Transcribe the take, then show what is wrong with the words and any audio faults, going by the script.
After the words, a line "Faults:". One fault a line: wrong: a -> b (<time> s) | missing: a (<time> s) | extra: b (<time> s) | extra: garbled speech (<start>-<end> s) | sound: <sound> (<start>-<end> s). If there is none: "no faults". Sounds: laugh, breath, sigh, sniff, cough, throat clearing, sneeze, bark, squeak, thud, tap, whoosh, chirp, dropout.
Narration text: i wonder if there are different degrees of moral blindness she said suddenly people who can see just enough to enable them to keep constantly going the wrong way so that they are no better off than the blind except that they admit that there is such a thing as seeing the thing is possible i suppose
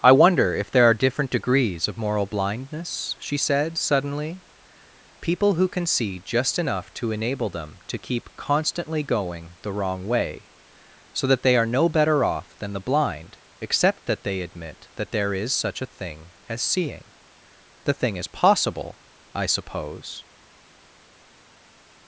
i wonder if there are different degrees of moral blindness she said suddenly people who can see just enough to enable them to keep constantly going the wrong way so that they are no better off than the blind except that they admit that there is such a thing as seeing the thing is possible i suppose
Faults:
no faults